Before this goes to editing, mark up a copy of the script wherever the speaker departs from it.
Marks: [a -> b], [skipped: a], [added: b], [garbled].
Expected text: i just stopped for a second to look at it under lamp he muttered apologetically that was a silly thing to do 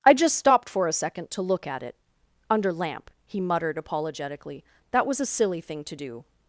i just stopped for a second to look at it under lamp he muttered apologetically that was a silly thing to do